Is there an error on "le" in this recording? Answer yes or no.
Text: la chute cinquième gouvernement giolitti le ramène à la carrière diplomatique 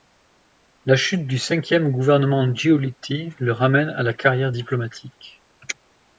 no